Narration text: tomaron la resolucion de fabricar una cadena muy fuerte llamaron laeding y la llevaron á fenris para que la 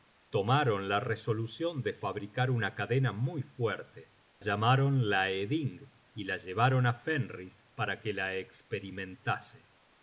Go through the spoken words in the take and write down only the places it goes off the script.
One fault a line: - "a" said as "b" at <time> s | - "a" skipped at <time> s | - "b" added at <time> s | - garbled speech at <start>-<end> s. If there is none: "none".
none